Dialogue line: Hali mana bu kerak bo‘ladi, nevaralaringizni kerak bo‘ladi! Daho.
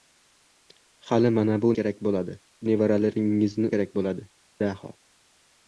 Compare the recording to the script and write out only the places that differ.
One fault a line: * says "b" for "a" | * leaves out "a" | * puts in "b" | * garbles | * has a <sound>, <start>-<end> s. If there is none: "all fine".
all fine